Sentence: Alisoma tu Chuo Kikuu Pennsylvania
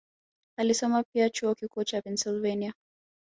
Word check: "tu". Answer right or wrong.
wrong